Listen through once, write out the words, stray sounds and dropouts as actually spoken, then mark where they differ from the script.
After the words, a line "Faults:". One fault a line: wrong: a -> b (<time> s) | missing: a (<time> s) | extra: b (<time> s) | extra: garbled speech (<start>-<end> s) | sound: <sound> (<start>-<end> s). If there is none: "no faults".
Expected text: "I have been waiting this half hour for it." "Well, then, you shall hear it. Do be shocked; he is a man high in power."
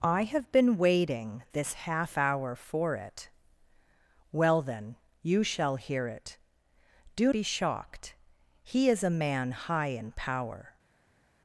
"I have been waiting this half hour for it." "Well, then, you shall hear it. Do be shocked; he is a man high in power."
Faults:
no faults